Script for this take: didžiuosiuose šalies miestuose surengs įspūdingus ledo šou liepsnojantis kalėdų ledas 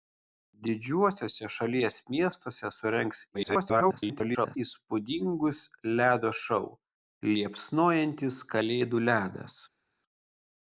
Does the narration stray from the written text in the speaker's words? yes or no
yes